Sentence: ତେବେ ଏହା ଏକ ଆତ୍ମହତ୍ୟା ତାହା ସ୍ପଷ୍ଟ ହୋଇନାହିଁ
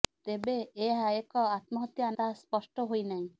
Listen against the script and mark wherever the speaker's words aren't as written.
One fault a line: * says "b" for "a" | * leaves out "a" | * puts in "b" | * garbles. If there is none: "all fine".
all fine